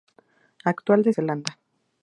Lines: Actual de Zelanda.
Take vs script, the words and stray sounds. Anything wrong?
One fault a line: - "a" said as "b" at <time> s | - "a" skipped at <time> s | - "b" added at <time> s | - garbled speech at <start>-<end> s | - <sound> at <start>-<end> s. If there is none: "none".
none